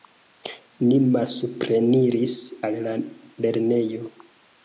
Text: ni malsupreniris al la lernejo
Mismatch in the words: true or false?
false